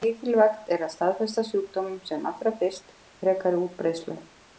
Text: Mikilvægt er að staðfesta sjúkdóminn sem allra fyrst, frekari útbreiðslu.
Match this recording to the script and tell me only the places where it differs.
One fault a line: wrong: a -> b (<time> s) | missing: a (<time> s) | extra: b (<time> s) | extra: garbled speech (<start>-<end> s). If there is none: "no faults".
no faults